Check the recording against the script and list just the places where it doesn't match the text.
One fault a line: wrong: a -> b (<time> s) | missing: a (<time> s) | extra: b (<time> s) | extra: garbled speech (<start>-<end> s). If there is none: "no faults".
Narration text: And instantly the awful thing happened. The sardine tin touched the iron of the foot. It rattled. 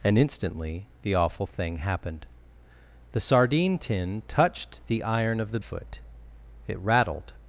no faults